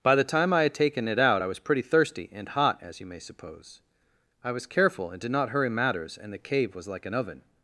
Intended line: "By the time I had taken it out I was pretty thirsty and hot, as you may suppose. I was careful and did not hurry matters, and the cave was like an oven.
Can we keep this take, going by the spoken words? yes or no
yes